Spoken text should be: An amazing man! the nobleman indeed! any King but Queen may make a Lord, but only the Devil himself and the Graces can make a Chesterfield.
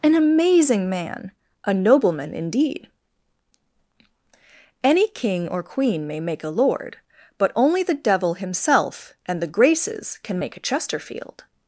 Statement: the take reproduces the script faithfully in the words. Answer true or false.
false